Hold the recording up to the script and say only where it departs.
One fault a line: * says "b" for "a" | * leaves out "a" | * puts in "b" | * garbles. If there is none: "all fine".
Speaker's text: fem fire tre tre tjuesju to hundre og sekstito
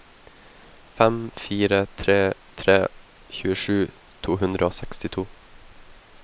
all fine